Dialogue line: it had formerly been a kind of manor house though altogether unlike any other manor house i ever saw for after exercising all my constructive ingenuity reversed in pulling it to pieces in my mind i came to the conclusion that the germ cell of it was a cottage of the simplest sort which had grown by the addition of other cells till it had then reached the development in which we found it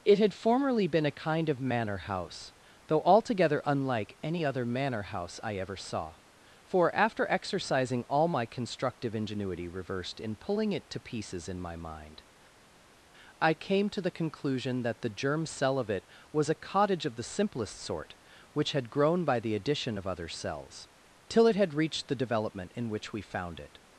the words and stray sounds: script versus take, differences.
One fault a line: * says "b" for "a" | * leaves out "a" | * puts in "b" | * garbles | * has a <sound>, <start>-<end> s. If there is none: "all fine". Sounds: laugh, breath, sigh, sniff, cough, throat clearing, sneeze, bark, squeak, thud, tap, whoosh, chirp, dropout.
* leaves out "then"